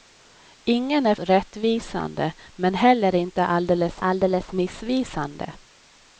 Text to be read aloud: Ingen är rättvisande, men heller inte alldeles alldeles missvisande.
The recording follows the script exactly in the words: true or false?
true